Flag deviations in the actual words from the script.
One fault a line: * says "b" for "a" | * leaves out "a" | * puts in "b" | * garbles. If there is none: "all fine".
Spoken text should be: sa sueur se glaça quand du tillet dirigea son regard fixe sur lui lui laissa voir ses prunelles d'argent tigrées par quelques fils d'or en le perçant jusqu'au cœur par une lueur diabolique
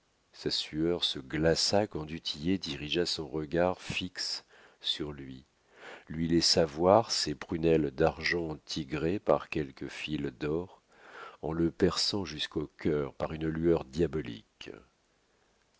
all fine